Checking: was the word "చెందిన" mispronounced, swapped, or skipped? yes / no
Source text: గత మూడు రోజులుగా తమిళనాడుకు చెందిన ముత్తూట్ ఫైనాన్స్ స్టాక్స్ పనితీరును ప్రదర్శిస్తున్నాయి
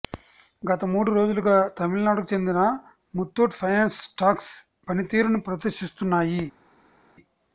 no